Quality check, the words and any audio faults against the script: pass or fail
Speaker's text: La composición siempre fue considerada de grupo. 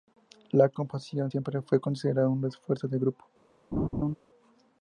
fail